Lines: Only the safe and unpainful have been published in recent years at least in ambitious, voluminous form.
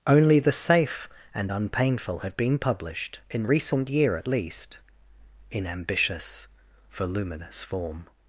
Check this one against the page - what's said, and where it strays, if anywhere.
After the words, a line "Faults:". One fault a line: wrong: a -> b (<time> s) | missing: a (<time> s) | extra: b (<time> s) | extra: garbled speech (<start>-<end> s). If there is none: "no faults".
Only the safe and unpainful have been published in recent year at least in ambitious, voluminous form.
Faults:
wrong: years -> year (3.9 s)